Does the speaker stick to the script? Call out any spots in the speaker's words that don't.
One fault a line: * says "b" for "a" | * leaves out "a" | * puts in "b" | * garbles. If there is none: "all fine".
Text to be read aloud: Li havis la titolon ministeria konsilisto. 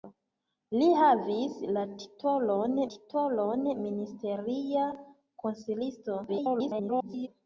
* puts in "titolon"
* garbles